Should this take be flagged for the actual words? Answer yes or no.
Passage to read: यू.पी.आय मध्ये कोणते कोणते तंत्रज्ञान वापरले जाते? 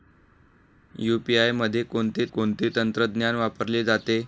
no